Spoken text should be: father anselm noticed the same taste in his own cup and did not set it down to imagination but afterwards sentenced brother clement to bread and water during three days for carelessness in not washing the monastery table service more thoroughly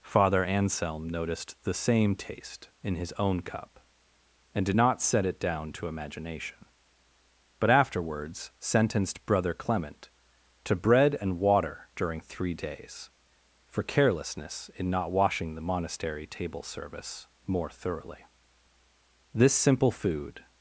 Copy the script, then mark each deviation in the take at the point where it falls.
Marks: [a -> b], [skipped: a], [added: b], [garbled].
father anselm noticed the same taste in his own cup and did not set it down to imagination but afterwards sentenced brother clement to bread and water during three days for carelessness in not washing the monastery table service more thoroughly [added: this simple food]